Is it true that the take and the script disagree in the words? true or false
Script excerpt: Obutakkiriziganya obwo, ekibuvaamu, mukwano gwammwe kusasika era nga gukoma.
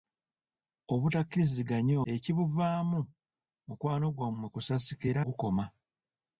true